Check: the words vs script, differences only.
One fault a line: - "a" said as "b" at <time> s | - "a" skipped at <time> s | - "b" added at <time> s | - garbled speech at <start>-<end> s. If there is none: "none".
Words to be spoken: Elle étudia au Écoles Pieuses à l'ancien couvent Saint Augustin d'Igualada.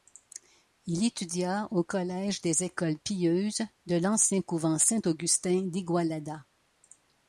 - "Elle" said as "Il" at 0.9 s
- "collège des" added at 1.8 s
- "à" said as "de" at 3.9 s